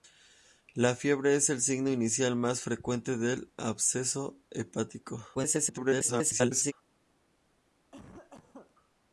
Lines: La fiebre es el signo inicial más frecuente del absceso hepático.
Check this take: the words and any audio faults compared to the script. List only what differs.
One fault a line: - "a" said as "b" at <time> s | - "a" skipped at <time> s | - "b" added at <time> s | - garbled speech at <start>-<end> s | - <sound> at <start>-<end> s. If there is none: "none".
- garbled speech at 5.3-6.7 s
- cough at 7.9-8.8 s